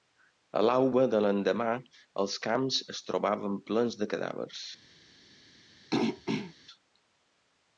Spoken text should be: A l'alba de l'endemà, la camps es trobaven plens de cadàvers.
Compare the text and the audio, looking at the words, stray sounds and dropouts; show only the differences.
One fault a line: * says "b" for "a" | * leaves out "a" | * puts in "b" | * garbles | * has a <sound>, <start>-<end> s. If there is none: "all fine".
* says "els" for "la"
* has a throat clearing, 5.9-6.5 s